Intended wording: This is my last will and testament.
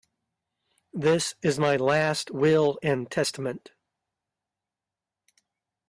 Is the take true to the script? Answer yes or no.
yes